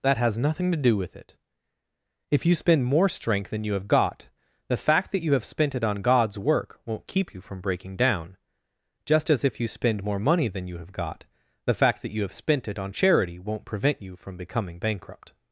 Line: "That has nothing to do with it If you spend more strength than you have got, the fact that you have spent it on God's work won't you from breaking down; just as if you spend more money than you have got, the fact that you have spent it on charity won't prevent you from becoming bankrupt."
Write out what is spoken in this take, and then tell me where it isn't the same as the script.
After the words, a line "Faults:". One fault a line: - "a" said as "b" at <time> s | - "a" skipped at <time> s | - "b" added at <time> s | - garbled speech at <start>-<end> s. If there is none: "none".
"That has nothing to do with it If you spend more strength than you have got, the fact that you have spent it on God's work won't keep you from breaking down; just as if you spend more money than you have got, the fact that you have spent it on charity won't prevent you from becoming bankrupt."
Faults:
- "keep" added at 7.1 s